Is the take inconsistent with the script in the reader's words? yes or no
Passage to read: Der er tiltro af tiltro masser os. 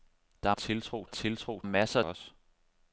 no